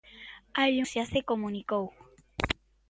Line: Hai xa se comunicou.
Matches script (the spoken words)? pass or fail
pass